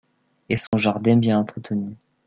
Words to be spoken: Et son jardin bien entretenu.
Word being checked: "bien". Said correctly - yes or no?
yes